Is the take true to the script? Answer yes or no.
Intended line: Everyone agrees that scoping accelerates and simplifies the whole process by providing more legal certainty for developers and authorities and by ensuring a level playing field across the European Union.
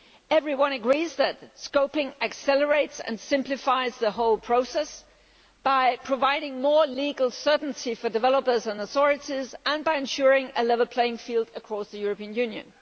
yes